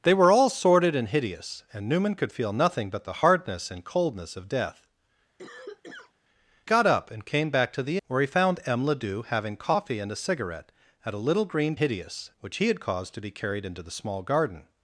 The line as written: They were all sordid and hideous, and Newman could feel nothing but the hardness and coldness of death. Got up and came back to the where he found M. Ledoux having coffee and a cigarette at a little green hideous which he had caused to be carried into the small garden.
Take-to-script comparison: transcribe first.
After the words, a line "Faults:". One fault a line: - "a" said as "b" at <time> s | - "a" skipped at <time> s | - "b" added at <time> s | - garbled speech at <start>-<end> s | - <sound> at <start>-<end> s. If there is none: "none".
They were all sordid and hideous, and Newman could feel nothing but the hardness and coldness of death. Got up and came back to the where he found M. Ledoux having coffee and a cigarette at a little green hideous which he had caused to be carried into the small garden.
Faults:
- cough at 5.4-6.1 s